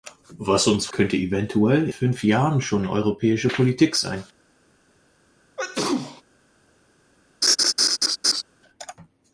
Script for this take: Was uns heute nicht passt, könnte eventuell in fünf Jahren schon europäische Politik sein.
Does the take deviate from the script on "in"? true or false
true